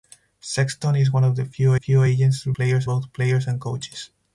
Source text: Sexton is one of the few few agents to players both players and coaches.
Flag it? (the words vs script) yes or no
no